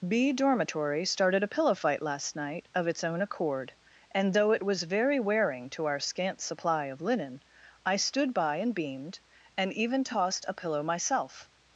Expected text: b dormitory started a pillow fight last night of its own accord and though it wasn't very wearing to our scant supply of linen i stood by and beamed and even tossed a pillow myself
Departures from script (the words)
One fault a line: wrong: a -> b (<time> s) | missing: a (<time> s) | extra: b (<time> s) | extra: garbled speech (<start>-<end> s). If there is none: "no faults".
wrong: wasn't -> was (4.6 s)